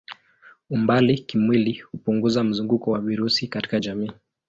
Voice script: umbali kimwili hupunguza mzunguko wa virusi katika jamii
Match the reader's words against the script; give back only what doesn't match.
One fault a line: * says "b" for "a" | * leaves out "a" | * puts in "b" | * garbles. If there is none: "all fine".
all fine